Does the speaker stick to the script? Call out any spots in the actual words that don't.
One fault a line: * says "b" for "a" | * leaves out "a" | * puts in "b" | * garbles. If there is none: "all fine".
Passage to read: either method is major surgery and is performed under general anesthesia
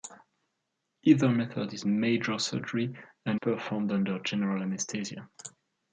* leaves out "is"